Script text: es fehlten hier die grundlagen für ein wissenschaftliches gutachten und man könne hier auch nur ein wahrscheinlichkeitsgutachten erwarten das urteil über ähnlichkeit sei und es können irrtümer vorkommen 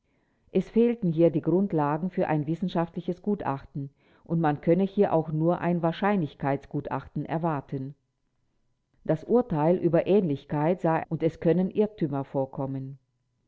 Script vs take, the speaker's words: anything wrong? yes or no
no